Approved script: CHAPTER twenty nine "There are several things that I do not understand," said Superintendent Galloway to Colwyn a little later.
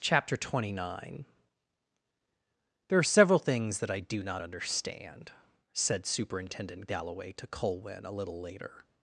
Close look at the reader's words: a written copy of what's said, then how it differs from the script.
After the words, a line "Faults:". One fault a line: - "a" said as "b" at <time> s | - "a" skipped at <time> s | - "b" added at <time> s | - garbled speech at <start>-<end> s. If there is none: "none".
CHAPTER twenty nine "There are several things that I do not understand," said Superintendent Galloway to Colwyn a little later.
Faults:
none